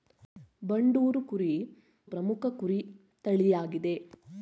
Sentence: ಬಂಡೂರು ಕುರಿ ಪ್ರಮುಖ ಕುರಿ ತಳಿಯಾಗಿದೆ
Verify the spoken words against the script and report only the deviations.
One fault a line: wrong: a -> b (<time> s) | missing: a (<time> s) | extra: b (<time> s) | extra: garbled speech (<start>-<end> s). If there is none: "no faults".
no faults